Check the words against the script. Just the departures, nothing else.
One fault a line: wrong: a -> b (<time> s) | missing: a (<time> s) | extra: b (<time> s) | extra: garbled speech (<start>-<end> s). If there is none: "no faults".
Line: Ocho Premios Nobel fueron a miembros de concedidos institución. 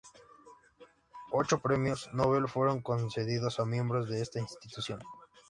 extra: concedidos (2.8 s)
wrong: concedidos -> esta (4.2 s)